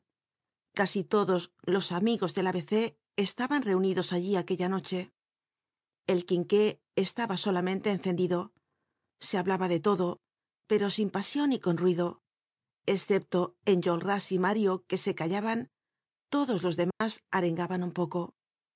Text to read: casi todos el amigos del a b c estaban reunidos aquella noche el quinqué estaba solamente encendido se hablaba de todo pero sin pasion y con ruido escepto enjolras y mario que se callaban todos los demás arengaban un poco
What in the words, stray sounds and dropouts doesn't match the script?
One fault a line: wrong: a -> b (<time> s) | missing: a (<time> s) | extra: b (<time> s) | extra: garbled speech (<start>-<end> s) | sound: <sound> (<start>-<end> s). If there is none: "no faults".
wrong: el -> los (1.7 s)
extra: allí (4.2 s)
sound: dropout (16.9-17.0 s)